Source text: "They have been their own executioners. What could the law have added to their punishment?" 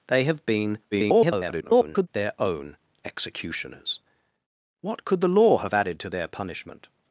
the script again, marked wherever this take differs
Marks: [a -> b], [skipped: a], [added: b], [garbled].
"They have been [garbled] their own executioners. What could the law have added to their punishment?"